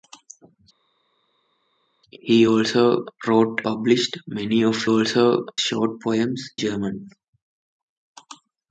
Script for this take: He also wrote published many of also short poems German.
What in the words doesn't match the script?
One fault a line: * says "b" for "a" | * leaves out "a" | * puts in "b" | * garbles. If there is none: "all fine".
all fine